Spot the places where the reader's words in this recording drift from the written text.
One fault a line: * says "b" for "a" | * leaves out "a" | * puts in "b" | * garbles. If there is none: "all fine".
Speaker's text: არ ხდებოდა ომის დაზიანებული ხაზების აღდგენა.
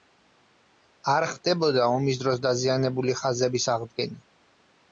* puts in "დროს"